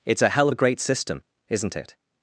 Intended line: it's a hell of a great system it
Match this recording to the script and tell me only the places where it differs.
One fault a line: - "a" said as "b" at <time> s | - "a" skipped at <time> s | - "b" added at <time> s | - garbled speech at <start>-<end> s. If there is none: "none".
- "isn't" added at 1.5 s